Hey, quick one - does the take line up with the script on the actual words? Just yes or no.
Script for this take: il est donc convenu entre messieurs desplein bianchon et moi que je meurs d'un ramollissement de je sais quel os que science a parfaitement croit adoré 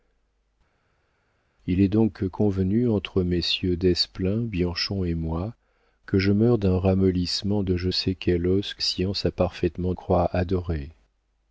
yes